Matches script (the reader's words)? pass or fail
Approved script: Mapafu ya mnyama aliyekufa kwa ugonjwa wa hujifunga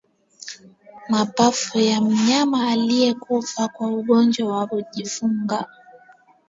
pass